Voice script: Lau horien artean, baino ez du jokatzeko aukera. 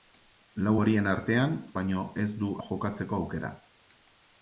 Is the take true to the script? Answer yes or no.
yes